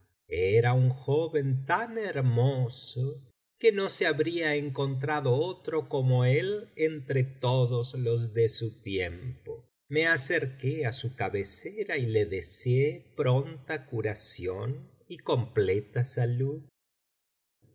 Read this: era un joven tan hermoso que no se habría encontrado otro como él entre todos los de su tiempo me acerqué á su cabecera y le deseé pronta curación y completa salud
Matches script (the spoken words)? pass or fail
pass